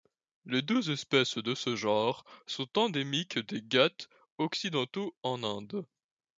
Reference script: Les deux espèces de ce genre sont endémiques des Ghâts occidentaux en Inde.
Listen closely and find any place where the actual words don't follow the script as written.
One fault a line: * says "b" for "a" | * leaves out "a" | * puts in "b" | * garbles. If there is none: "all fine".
all fine